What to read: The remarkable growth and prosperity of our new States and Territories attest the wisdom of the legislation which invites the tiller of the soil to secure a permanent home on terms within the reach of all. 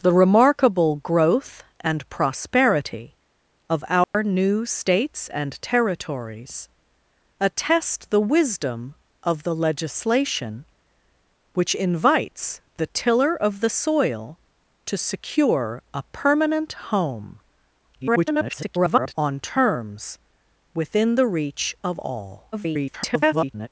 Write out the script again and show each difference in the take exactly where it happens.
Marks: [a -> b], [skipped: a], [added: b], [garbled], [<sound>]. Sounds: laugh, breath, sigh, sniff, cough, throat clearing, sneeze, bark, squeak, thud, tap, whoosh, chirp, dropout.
The remarkable growth and prosperity of our [dropout] new States and Territories attest the wisdom of the legislation which invites the tiller of the soil to secure a permanent home [garbled] on terms within the reach of all. [garbled]